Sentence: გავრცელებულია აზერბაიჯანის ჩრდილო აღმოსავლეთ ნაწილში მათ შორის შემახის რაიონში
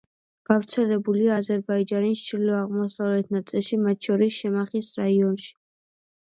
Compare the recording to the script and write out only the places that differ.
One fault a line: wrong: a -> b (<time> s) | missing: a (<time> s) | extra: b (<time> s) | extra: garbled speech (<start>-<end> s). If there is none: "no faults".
no faults